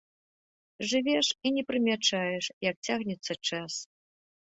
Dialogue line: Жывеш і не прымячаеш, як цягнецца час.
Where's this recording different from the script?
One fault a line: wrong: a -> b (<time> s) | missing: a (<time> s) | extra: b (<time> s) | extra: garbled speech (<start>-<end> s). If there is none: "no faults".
no faults